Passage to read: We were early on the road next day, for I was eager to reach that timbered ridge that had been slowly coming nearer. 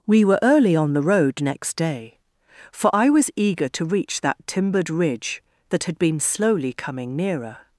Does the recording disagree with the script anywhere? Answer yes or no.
no